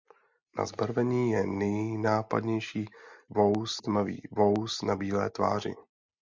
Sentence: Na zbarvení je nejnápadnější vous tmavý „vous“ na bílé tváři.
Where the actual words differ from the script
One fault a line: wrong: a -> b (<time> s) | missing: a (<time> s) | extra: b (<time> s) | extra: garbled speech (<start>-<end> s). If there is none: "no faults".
no faults